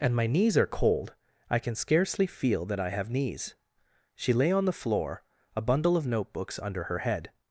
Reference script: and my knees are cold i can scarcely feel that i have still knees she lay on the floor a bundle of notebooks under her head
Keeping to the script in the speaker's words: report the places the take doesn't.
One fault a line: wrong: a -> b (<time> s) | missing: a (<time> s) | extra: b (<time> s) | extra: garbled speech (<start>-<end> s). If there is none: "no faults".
missing: still (3.1 s)